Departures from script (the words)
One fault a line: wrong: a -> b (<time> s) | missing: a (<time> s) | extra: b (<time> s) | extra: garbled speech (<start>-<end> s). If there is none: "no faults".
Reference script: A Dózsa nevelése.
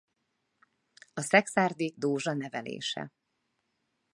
extra: Szekszárdi (1.2 s)